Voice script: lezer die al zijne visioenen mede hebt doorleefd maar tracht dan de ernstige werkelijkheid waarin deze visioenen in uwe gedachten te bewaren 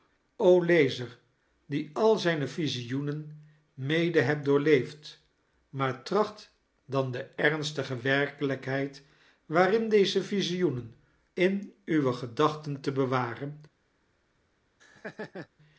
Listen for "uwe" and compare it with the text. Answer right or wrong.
right